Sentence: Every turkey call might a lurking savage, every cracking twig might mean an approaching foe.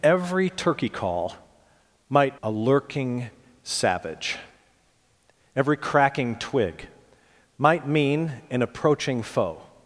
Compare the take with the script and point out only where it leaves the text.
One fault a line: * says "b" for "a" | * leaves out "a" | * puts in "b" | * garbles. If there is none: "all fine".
all fine